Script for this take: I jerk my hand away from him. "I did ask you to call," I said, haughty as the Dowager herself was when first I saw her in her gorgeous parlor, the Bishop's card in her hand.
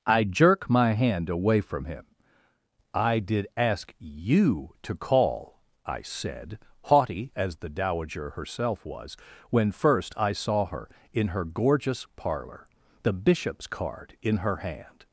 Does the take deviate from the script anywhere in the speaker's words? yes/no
no